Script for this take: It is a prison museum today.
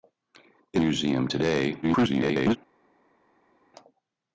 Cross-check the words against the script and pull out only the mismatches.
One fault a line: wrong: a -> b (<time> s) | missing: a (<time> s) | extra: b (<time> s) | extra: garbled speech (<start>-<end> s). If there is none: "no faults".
missing: is a prison (0.8 s)
extra: garbled speech (1.8-2.6 s)